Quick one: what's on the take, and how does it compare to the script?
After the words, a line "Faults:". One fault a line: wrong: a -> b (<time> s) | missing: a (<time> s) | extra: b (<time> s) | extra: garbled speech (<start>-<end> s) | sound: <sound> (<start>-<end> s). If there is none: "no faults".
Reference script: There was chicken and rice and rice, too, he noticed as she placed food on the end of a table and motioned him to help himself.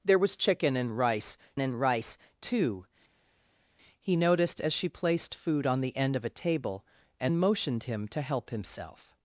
There was chicken and rice and rice, too, he noticed as she placed food on the end of a table and motioned him to help himself.
Faults:
no faults